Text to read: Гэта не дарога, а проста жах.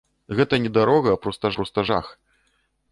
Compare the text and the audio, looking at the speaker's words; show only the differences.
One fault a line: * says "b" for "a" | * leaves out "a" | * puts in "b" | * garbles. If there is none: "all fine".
* puts in "проста"